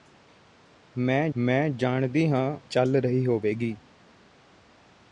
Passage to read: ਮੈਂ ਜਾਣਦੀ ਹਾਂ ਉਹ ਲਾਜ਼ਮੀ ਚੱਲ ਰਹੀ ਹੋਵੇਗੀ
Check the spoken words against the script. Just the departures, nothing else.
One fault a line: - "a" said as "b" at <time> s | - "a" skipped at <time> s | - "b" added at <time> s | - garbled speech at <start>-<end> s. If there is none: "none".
- "ਮੈਂ" added at 1.3 s
- "ਉਹ ਲਾਜ਼ਮੀ" skipped at 2.6 s